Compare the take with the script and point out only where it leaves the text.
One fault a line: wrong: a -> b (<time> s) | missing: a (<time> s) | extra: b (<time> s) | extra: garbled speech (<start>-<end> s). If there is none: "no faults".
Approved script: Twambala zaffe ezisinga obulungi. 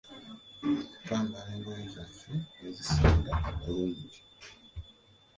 extra: engoye (1.6 s)